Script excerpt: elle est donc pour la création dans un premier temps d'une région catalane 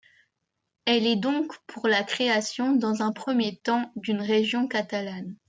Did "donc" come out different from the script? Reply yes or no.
no